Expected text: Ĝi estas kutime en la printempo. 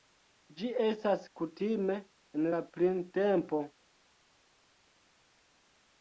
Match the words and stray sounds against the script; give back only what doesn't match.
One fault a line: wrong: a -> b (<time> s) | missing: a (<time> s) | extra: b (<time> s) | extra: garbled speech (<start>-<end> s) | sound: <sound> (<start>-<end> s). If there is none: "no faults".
no faults